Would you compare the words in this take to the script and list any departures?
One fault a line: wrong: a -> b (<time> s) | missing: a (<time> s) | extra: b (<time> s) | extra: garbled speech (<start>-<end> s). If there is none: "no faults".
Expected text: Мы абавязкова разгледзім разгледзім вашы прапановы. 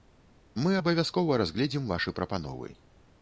missing: разгледзім (1.9 s)